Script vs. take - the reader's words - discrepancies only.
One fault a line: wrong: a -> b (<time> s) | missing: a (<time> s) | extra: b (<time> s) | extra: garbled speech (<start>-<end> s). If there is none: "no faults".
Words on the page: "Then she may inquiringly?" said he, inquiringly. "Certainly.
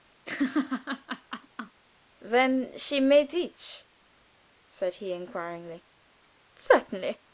wrong: inquiringly -> teach (3.3 s)